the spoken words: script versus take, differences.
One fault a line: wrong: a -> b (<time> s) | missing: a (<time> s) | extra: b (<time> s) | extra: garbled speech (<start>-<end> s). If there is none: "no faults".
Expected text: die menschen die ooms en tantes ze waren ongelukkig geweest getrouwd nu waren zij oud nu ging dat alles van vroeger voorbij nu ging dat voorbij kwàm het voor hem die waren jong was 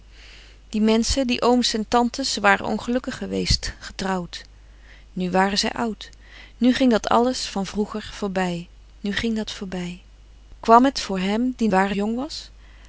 no faults